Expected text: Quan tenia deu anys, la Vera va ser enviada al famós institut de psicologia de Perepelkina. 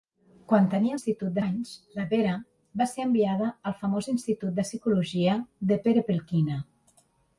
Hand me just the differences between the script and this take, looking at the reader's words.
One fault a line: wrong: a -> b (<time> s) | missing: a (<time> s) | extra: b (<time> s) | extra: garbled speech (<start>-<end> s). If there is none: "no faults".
wrong: deu -> institut (1.0 s)